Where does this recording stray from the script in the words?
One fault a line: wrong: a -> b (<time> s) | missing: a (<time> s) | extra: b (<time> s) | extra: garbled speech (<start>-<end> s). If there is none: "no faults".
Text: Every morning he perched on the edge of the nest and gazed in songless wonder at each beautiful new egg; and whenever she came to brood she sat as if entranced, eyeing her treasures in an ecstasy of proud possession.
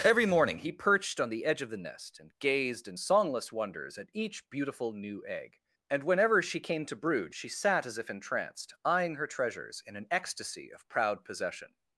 wrong: wonder -> wonders (3.5 s)